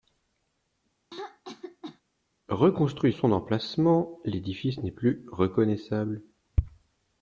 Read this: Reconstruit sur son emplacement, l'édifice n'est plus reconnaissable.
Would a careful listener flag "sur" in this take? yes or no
yes